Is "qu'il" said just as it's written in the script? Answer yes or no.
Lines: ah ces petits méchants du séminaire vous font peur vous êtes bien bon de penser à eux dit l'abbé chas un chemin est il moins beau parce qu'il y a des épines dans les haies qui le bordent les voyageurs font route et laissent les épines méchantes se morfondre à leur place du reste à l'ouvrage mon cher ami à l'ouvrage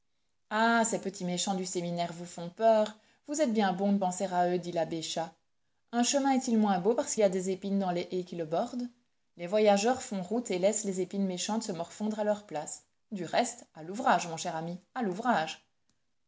no